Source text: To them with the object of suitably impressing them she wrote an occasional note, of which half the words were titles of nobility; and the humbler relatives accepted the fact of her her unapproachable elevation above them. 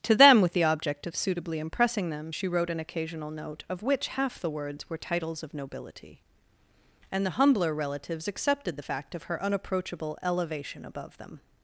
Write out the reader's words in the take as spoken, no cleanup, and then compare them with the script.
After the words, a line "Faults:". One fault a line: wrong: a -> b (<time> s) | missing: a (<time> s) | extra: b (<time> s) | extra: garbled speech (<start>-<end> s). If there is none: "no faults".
To them with the object of suitably impressing them she wrote an occasional note, of which half the words were titles of nobility; and the humbler relatives accepted the fact of her unapproachable elevation above them.
Faults:
missing: her (9.4 s)